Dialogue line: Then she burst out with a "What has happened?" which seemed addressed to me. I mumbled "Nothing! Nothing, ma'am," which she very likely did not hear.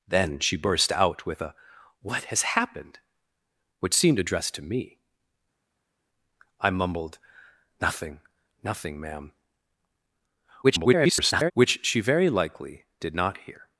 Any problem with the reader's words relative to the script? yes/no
yes